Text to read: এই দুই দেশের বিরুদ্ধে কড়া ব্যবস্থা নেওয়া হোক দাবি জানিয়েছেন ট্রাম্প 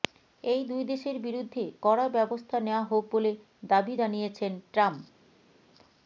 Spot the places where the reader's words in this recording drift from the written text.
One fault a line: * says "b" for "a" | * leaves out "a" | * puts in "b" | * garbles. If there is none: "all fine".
* puts in "বলে"